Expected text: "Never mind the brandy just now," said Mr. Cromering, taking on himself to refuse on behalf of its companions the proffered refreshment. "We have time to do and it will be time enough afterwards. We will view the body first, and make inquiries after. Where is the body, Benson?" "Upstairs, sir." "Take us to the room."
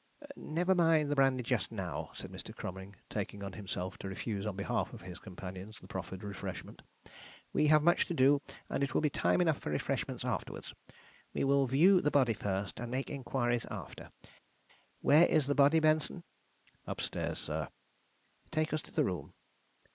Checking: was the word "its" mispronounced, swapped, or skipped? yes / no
yes